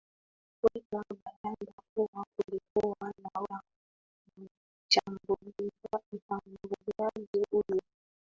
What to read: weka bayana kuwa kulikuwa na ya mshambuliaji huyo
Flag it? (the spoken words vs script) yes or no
no